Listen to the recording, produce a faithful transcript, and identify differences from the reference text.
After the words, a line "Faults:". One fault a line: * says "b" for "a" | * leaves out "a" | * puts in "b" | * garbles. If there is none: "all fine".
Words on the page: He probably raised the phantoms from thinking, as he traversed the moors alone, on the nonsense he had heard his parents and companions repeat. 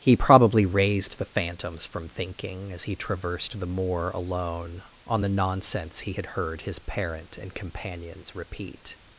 He probably raised the phantoms from thinking, as he traversed the moor alone, on the nonsense he had heard his parent and companions repeat.
Faults:
* says "moor" for "moors"
* says "parent" for "parents"